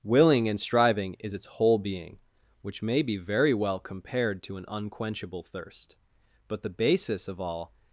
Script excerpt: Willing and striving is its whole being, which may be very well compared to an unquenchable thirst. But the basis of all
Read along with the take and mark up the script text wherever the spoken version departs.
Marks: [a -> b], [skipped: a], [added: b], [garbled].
Willing and striving is its whole being, which may be very well compared to an unquenchable thirst. But the basis of all